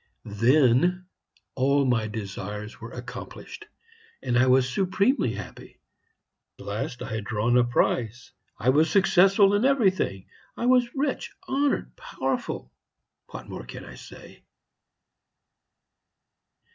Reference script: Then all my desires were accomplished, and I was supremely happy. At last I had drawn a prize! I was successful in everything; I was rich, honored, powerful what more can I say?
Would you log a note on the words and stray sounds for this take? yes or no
yes